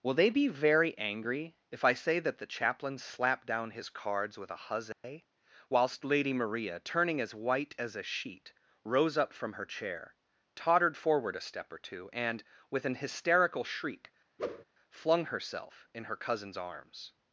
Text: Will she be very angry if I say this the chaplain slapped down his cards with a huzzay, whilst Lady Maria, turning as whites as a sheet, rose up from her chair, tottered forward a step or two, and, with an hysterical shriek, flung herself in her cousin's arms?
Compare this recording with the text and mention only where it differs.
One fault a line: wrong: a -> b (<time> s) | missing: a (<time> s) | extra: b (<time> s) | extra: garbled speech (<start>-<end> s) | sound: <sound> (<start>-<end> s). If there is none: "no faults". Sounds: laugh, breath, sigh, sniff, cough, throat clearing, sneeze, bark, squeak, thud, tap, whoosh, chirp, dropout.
wrong: she -> they (0.1 s)
wrong: this -> that (2.2 s)
sound: dropout (4.9-5.0 s)
wrong: whites -> white (7.3 s)
sound: whoosh (14.4-14.6 s)